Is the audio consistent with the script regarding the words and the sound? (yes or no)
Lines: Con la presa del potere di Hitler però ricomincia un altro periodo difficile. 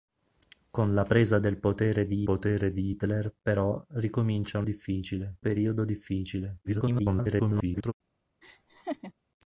no